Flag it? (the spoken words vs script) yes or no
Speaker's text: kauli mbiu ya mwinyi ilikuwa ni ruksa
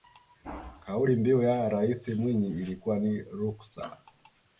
yes